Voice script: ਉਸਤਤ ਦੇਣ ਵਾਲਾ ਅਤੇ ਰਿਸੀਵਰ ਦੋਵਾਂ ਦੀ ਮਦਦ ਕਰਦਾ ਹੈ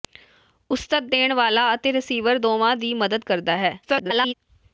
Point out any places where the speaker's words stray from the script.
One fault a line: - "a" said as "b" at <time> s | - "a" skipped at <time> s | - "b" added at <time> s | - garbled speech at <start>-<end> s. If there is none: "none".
- garbled speech at 3.8-4.3 s